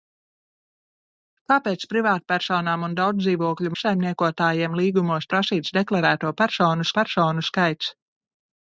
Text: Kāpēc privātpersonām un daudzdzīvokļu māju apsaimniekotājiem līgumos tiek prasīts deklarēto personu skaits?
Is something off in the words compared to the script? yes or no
yes